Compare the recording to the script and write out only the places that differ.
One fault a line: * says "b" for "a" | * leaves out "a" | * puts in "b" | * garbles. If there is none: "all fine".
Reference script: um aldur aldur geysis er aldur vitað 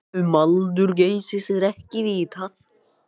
* leaves out "aldur"
* says "ekki" for "aldur"